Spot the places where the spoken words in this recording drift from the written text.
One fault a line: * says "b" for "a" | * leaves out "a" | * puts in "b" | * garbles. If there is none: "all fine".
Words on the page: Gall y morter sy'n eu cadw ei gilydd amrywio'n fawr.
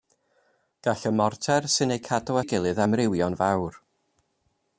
all fine